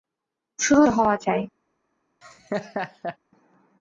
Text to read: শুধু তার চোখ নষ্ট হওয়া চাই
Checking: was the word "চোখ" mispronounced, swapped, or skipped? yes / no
yes